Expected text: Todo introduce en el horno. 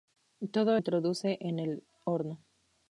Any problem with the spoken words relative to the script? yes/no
no